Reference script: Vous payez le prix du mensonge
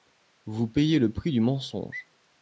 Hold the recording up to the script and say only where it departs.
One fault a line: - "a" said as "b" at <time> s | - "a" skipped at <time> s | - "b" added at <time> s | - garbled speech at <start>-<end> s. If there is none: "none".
none